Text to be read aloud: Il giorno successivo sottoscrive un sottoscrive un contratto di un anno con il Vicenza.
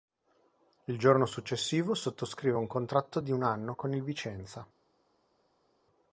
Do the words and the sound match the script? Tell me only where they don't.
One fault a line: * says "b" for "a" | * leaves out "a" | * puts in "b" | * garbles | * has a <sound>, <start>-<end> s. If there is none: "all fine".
* leaves out "sottoscrive un"